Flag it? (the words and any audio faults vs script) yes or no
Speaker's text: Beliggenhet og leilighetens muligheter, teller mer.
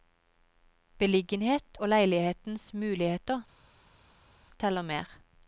no